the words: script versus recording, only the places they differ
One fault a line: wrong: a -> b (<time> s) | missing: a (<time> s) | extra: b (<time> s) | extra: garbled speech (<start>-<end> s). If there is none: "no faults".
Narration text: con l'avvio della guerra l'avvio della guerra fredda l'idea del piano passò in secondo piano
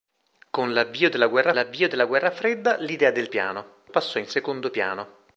no faults